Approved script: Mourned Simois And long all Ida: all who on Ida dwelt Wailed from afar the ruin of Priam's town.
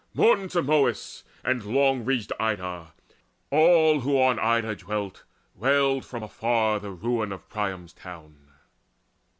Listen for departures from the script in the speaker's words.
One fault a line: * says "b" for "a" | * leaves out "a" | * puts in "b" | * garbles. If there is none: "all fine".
* says "ridged" for "all"